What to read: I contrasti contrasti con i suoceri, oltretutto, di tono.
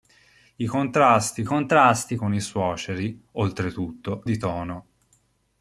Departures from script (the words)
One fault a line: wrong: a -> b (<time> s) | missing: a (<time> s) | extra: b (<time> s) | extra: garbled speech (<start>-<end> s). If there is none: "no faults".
no faults